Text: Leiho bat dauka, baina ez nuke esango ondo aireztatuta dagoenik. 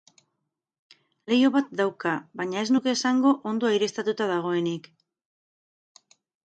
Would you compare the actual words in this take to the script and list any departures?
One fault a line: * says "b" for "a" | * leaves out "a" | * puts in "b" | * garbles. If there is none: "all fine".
all fine